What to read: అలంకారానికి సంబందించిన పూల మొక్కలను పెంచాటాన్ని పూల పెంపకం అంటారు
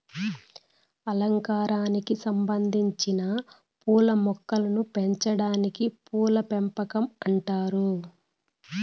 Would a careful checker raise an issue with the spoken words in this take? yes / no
no